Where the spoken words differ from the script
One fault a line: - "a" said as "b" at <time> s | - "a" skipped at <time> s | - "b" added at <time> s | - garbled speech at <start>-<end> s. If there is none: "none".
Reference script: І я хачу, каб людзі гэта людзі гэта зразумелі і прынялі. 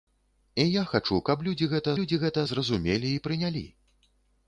none